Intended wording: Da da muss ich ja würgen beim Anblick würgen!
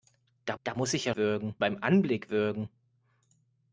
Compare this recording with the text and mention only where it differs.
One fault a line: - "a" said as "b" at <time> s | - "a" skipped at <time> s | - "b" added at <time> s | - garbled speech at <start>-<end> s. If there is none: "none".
none